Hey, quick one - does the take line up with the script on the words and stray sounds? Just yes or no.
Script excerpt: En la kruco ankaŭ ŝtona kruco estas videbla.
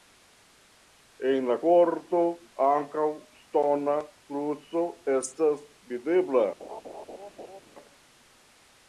no